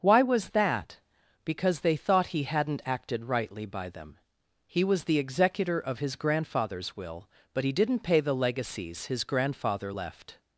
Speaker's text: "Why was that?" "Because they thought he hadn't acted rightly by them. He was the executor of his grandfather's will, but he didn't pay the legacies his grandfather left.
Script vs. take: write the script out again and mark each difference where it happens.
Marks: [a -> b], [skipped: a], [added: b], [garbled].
"Why was that?" "Because they thought he hadn't acted rightly by them. He was the executor of his grandfather's will, but he didn't pay the legacies his grandfather left.